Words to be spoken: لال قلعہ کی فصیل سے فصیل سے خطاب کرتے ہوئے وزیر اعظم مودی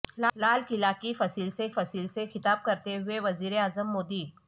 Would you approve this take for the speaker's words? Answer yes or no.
yes